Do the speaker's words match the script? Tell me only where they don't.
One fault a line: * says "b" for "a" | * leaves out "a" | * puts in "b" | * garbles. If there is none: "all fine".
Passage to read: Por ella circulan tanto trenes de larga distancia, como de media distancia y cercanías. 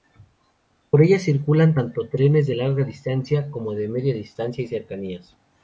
all fine